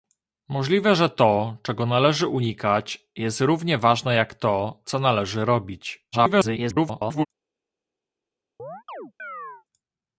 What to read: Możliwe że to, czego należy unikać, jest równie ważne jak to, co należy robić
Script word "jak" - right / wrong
right